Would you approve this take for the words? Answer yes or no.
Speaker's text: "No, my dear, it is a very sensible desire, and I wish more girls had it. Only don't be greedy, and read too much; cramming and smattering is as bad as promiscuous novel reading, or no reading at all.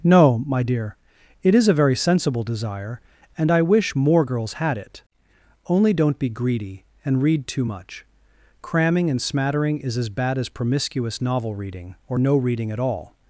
yes